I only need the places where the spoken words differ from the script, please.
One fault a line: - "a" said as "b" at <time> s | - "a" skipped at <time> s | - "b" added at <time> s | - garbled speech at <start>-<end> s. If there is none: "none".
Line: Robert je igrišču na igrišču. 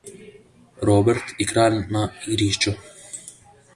- "igrišču" said as "kralj" at 1.5 s